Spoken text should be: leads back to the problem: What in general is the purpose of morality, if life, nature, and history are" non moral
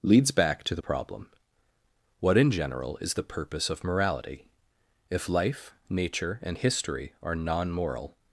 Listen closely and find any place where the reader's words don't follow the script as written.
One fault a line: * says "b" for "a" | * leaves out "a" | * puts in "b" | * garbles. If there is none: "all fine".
all fine